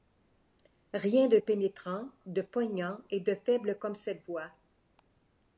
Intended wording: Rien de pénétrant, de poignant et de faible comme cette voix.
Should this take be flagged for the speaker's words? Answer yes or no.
no